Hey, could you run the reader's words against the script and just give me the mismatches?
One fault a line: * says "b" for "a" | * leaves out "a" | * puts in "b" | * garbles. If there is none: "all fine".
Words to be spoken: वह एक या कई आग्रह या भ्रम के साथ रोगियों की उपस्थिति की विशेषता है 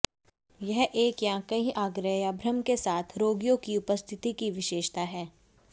* says "यह" for "वह"